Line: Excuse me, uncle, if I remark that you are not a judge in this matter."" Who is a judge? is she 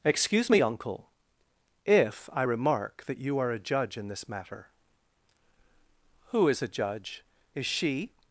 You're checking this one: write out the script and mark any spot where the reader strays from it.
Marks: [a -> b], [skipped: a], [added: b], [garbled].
Excuse me, uncle, if I remark that you are [skipped: not] a judge in this matter."" Who is a judge? is she